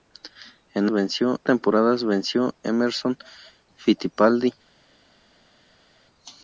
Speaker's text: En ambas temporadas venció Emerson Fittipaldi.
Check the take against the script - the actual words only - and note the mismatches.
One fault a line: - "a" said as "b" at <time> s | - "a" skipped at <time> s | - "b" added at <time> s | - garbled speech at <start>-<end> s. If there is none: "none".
- "ambas" said as "venció" at 0.9 s